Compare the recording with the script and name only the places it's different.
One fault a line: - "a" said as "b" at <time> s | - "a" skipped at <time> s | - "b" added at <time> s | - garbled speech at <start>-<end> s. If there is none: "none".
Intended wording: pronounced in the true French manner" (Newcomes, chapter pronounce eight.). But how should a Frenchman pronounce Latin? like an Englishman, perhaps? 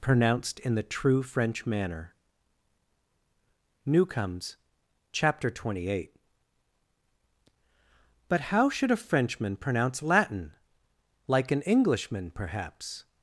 - "pronounce" said as "twenty" at 5.5 s